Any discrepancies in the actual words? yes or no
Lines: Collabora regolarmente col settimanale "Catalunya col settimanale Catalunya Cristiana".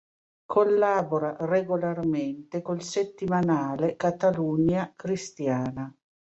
yes